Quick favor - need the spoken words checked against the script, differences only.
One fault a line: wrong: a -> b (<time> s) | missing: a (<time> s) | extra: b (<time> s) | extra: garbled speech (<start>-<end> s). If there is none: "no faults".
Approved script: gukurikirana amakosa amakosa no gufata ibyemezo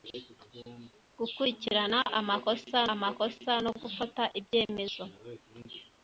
no faults